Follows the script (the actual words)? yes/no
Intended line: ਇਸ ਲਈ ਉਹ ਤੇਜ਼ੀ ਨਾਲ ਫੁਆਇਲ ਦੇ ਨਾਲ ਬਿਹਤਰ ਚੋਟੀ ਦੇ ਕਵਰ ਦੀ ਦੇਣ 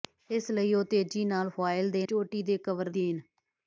no